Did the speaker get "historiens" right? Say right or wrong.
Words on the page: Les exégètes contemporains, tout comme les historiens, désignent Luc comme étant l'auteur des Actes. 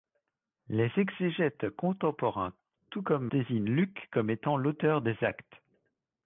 wrong